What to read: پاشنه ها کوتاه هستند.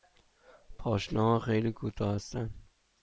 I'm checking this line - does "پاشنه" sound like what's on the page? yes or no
yes